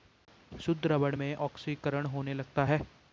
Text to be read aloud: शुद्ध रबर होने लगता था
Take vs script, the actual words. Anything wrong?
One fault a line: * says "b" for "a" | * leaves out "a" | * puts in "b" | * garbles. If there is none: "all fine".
* puts in "में ऑक्सीकरण"
* says "है" for "था"